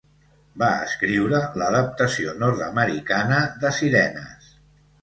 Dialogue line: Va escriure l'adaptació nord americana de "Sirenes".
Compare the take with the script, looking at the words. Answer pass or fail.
pass